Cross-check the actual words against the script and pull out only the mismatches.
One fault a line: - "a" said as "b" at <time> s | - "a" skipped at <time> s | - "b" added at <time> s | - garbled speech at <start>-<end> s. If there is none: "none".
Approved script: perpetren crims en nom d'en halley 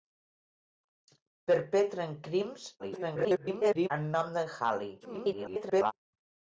- garbled speech at 2.8-3.9 s
- garbled speech at 5.0-5.9 s